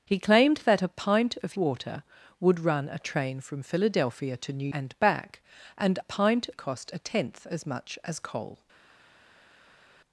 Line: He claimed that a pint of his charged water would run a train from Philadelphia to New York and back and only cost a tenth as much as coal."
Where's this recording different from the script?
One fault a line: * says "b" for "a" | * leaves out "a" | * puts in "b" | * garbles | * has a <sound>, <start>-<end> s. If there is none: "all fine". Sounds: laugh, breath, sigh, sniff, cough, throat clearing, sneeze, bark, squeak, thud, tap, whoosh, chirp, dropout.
* leaves out "his charged"
* leaves out "York"
* says "pint" for "only"